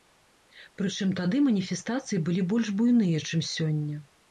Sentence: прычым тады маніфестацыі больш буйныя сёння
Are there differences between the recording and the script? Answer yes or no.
yes